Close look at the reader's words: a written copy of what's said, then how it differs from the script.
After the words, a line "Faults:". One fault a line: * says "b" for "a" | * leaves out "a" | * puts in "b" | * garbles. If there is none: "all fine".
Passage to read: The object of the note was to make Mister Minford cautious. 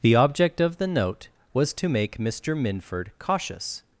The object of the note was to make Mister Minford cautious.
Faults:
all fine